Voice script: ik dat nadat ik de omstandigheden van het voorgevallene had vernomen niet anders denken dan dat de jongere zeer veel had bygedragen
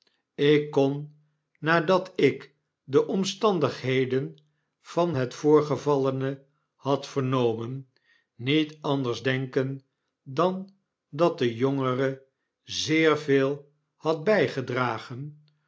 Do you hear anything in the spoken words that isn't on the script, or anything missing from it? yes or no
yes